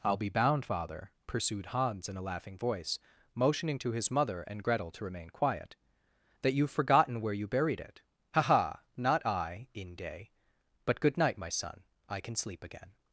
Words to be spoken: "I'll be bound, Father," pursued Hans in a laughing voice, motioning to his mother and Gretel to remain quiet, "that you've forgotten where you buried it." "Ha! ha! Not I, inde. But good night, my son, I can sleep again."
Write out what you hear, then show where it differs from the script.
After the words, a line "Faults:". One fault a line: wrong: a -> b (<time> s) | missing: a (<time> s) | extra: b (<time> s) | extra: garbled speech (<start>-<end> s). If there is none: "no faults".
"I'll be bound, Father," pursued Hans in a laughing voice, motioning to his mother and Gretel to remain quiet, "that you've forgotten where you buried it." "Ha! ha! Not I, inde. But good night, my son, I can sleep again."
Faults:
no faults